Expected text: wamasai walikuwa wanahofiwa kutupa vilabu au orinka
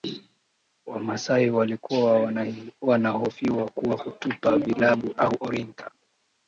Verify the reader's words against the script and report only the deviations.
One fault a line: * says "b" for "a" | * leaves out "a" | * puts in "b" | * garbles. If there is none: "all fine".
* puts in "kwa"